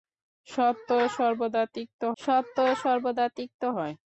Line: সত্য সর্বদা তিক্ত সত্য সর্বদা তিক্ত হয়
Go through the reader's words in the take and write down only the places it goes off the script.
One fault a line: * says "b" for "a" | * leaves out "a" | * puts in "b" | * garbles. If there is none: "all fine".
all fine